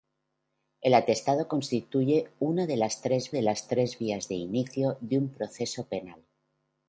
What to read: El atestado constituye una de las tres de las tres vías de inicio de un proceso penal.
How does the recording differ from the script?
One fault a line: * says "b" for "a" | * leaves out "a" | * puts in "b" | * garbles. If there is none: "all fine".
all fine